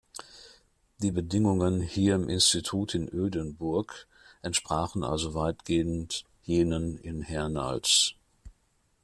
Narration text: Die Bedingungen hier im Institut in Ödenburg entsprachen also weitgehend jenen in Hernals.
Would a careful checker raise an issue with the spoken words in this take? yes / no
no